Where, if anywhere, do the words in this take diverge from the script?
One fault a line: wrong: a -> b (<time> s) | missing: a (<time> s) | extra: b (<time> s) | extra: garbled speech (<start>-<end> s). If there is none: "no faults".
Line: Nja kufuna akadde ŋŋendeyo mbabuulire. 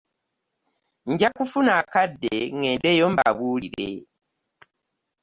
no faults